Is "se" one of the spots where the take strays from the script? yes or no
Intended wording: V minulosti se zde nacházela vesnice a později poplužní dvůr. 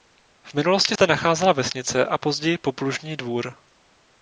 yes